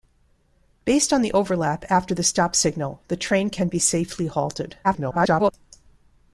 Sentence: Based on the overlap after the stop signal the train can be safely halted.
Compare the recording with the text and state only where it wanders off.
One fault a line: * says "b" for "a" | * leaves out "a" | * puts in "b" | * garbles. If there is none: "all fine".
* garbles